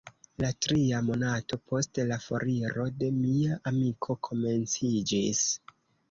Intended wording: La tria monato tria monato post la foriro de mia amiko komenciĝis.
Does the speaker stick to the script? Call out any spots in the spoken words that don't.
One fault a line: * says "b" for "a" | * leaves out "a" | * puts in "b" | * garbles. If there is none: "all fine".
* leaves out "tria monato"